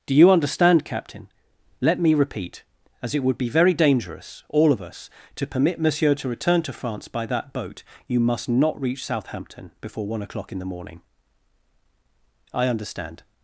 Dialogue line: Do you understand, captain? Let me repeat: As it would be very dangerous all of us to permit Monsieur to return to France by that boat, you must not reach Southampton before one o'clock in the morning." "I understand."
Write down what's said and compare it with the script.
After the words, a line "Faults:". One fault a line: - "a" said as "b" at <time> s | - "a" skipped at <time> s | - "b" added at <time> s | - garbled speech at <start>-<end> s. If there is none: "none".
Do you understand, captain? Let me repeat: As it would be very dangerous all of us to permit Monsieur to return to France by that boat, you must not reach Southampton before one o'clock in the morning." "I understand."
Faults:
none